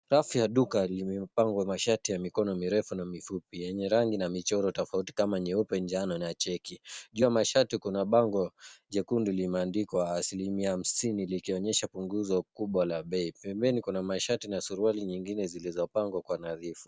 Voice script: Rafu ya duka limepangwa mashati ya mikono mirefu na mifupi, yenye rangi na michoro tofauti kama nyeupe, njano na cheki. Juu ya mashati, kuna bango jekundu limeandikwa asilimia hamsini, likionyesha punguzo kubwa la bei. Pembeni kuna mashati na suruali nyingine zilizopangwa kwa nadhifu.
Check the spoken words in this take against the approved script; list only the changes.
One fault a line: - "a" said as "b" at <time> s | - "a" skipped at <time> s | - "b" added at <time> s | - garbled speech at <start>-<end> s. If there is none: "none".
none